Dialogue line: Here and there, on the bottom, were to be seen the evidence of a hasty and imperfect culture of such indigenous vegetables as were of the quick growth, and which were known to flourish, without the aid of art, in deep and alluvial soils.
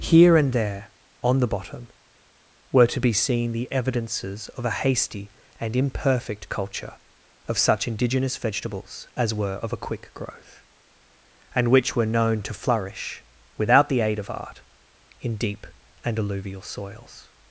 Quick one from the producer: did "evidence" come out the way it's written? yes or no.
no